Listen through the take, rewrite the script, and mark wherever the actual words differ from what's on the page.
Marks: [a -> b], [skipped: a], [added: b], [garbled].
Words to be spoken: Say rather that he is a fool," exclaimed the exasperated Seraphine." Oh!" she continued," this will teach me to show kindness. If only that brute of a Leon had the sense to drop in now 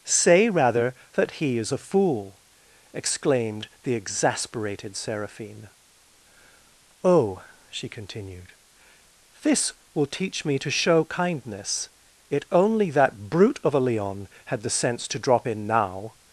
Say rather that he is a fool," exclaimed the exasperated Seraphine." Oh!" she continued," this will teach me to show kindness. [If -> It] only that brute of a Leon had the sense to drop in now